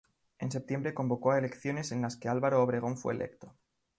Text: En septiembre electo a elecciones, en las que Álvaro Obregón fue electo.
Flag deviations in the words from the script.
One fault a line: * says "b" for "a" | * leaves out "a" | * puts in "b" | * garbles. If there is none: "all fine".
* says "convocó" for "electo"